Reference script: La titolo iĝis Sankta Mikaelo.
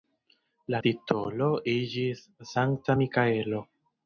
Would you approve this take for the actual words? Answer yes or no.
yes